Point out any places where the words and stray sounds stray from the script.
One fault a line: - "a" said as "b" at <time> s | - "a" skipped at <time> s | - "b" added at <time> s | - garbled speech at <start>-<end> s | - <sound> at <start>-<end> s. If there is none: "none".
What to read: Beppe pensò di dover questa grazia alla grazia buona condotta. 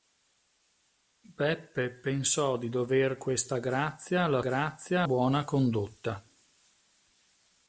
none